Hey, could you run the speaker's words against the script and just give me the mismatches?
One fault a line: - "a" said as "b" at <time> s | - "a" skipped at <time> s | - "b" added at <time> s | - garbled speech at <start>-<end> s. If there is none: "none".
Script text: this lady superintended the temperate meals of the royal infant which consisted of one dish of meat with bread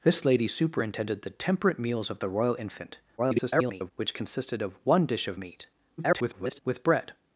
- garbled speech at 3.2-3.9 s
- garbled speech at 6.0-6.6 s